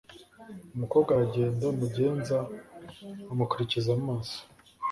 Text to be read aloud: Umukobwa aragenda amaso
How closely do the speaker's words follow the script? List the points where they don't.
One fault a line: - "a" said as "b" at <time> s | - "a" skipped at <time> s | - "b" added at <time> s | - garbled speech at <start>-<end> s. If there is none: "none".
- "mugenza amukurikiza" added at 1.8 s